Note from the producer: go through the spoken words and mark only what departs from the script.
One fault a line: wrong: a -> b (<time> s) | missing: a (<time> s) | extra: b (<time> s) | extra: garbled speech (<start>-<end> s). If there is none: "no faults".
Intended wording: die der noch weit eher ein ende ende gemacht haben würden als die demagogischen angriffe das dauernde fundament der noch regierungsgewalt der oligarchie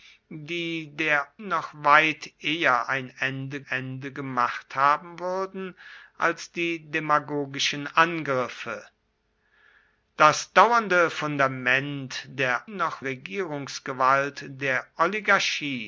no faults